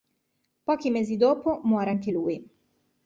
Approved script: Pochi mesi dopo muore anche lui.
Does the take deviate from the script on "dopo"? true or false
false